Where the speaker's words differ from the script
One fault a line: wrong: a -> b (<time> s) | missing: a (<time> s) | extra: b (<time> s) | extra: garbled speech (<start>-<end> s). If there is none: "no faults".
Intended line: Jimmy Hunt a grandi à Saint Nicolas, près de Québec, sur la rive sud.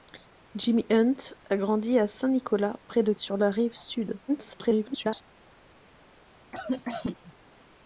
missing: Québec (3.1 s)
extra: garbled speech (4.3-5.2 s)